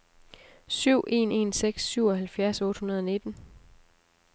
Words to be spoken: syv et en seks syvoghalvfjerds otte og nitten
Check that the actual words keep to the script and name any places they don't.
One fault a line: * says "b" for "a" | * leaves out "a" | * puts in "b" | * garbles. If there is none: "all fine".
* says "en" for "et"
* puts in "hundrede"